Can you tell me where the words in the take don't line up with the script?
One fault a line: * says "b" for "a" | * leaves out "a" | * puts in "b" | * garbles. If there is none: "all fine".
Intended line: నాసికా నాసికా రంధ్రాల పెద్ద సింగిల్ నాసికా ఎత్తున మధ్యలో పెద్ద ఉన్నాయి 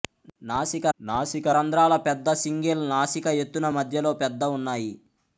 all fine